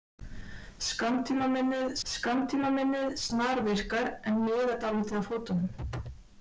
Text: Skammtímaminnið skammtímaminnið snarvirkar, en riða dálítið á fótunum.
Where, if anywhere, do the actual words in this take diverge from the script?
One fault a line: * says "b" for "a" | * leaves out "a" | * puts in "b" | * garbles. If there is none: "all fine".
all fine